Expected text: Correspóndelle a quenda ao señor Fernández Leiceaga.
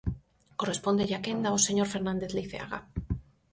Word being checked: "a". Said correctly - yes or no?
yes